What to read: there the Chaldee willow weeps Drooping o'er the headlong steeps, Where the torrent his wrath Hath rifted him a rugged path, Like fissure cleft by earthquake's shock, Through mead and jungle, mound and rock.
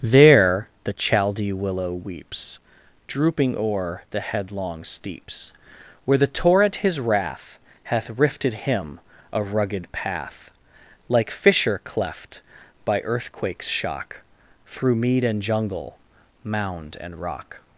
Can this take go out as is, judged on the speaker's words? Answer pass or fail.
pass